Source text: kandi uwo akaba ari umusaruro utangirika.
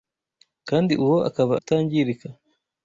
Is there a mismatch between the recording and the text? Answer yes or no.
yes